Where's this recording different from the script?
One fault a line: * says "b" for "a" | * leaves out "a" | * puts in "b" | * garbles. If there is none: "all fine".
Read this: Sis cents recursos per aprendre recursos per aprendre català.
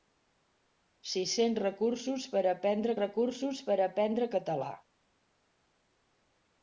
all fine